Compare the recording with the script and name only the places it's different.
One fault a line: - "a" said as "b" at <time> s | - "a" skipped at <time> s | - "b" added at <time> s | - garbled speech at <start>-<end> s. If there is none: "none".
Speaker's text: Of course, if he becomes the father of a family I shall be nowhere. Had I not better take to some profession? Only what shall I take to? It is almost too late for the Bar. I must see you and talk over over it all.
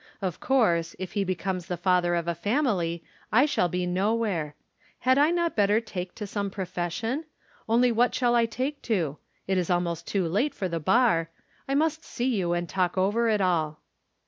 - "over" skipped at 13.3 s